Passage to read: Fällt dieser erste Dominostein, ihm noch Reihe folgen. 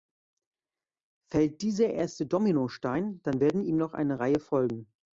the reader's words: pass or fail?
fail